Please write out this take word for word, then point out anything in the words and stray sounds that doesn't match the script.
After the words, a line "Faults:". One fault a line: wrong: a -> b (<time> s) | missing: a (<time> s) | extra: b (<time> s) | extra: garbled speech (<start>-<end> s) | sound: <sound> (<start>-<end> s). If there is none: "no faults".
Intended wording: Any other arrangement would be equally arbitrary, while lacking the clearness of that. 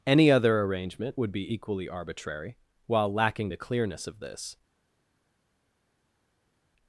Any other arrangement would be equally arbitrary, while lacking the clearness of this.
Faults:
wrong: that -> this (4.2 s)